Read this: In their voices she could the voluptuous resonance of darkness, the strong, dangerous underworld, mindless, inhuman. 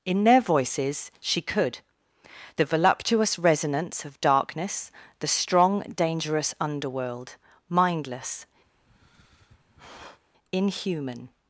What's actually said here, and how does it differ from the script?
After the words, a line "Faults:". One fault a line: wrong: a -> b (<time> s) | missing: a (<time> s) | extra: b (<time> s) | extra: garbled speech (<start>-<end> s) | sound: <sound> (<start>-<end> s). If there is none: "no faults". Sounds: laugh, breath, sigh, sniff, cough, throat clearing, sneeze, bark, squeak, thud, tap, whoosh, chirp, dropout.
In their voices she could the voluptuous resonance of darkness, the strong, dangerous underworld, mindless, inhuman.
Faults:
sound: sigh (8.7-10.2 s)